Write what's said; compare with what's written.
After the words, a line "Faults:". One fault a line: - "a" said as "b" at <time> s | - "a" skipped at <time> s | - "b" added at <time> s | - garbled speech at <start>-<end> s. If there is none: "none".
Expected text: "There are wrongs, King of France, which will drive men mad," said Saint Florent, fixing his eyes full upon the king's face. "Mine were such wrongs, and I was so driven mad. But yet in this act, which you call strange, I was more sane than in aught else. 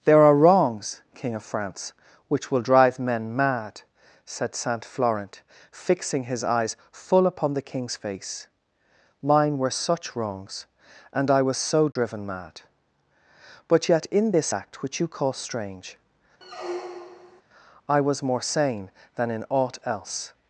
"There are wrongs, King of France, which will drive men mad," said Saint Florent, fixing his eyes full upon the king's face. "Mine were such wrongs, and I was so driven mad. But yet in this act, which you call strange, I was more sane than in aught else.
Faults:
none